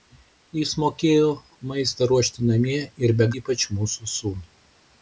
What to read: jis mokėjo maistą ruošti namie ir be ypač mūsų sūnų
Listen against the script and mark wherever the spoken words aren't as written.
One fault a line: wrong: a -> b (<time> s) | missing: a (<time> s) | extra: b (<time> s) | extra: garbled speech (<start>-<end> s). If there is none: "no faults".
no faults